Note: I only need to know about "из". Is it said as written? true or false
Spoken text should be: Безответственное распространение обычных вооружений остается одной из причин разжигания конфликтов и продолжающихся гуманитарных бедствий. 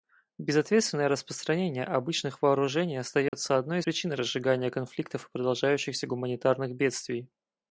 false